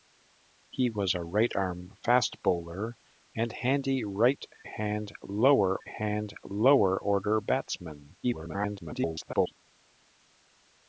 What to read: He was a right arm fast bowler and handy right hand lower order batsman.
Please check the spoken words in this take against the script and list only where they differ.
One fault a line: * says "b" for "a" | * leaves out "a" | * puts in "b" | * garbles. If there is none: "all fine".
* puts in "hand lower"
* garbles